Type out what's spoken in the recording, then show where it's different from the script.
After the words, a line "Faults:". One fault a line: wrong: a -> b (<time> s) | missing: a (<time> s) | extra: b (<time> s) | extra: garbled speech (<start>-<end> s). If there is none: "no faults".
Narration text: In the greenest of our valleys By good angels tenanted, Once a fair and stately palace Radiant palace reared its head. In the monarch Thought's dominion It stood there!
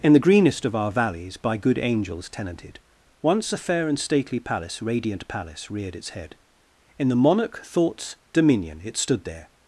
In the greenest of our valleys By good angels tenanted, Once a fair and stately palace Radiant palace reared its head. In the monarch Thought's dominion It stood there!
Faults:
no faults